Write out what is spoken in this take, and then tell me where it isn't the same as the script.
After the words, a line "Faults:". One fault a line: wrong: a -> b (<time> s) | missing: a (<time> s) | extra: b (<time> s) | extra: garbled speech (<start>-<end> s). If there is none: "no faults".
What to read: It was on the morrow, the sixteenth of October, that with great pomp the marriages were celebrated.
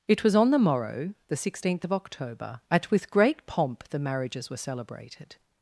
It was on the morrow, the sixteenth of October, at with great pomp the marriages were celebrated.
Faults:
wrong: that -> at (2.7 s)